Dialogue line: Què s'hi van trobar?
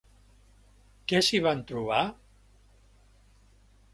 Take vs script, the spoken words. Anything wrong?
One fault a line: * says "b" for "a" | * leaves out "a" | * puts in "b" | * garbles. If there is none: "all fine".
all fine